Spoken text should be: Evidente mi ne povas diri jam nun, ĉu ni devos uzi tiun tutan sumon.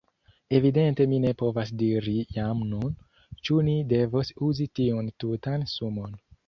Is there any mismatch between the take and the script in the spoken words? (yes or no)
no